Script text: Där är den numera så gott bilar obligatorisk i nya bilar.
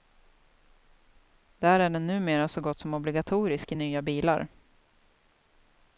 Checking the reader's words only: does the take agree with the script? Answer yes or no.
no